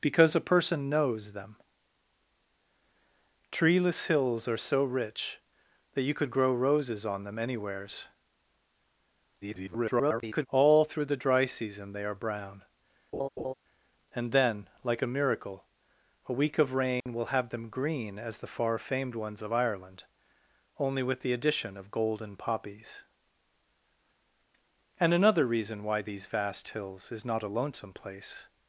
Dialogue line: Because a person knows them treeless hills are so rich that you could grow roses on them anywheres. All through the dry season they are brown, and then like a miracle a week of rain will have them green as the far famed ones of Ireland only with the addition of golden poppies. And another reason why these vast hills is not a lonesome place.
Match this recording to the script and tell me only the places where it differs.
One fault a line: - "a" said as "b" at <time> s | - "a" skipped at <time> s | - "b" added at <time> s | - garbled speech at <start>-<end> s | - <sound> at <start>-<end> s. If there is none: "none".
- garbled speech at 9.4-10.5 s
- laugh at 13.1-13.5 s
- dropout at 17.0-17.1 s